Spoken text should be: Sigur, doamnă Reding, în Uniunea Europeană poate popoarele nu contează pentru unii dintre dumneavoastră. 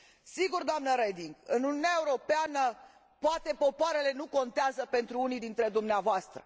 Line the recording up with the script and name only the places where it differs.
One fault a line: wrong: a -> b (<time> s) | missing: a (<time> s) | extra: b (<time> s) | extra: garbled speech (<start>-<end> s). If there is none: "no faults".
no faults